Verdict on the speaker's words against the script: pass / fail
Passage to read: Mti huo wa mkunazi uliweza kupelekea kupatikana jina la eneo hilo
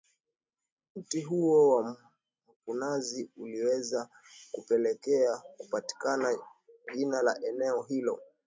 pass